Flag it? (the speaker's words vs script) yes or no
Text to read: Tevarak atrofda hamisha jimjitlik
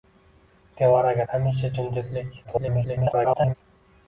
yes